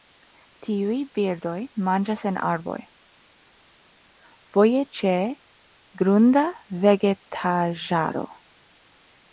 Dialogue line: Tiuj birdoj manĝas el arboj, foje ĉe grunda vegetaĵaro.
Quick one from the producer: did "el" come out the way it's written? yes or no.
no